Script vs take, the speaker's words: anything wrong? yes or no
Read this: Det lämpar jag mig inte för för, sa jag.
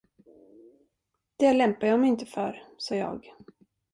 yes